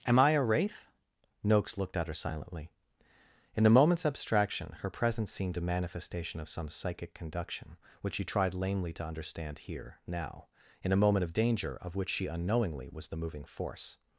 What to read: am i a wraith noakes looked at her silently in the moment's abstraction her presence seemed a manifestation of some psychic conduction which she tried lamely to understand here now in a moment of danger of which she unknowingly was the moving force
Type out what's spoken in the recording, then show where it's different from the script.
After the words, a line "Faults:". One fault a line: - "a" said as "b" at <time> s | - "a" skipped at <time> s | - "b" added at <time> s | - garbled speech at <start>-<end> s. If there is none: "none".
am i a wraith noakes looked at her silently in the moment's abstraction her presence seemed a manifestation of some psychic conduction which she tried lamely to understand here now in a moment of danger of which she unknowingly was the moving force
Faults:
none